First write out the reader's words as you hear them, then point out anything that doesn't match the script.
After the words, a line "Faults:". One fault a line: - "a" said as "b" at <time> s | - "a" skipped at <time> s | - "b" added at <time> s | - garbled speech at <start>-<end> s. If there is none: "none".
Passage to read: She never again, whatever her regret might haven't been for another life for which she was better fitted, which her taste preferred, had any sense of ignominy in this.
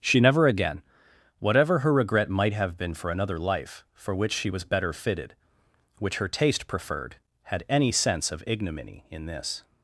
She never again, whatever her regret might have been for another life for which she was better fitted, which her taste preferred, had any sense of ignominy in this.
Faults:
- "haven't" said as "have" at 2.5 s